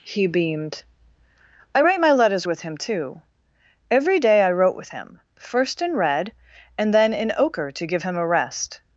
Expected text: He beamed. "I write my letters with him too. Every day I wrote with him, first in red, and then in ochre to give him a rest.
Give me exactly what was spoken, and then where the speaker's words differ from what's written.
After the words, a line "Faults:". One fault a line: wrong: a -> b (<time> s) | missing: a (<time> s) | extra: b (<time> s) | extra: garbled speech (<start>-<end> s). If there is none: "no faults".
He beamed. "I write my letters with him too. Every day I wrote with him, first in red, and then in ochre to give him a rest.
Faults:
no faults